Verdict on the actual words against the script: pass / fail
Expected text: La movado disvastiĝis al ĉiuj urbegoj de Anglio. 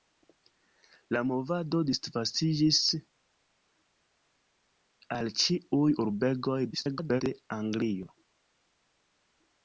fail